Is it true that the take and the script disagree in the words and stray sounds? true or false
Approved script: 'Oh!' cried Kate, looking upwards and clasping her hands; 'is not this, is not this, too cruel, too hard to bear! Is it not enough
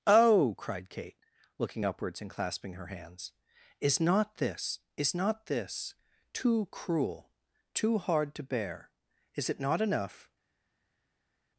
false